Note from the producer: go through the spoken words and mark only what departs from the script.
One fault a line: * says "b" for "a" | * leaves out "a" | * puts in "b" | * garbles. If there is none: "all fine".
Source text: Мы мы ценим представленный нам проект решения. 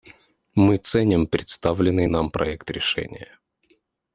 * leaves out "мы"